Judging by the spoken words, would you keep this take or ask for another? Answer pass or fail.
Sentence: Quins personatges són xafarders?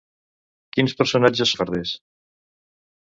fail